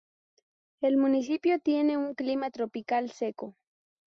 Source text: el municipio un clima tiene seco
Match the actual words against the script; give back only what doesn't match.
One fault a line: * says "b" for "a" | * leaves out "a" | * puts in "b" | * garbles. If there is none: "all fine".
* puts in "tiene"
* says "tropical" for "tiene"